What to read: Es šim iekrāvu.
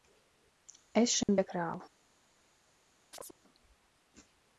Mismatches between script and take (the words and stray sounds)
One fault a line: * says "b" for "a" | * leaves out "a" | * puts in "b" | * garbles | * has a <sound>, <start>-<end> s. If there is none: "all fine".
* has a dropout, 1.2-1.3 s
* has a chirp, 3.1-3.4 s